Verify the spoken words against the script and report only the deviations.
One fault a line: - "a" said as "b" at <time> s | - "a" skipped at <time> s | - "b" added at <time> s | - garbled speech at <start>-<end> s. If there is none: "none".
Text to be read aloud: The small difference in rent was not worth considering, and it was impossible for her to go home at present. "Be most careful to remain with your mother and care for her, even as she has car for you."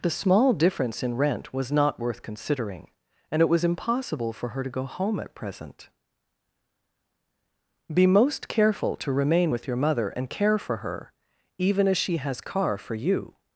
none